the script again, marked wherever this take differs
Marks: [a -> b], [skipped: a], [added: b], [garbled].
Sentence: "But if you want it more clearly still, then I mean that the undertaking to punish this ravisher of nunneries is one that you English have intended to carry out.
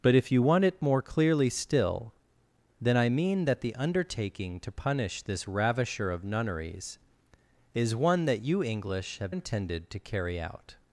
"But if you want it more clearly still, then I mean that the undertaking to punish this ravisher of nunneries is one that you English have intended to carry out.